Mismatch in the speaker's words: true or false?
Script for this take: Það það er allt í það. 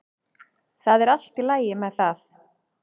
true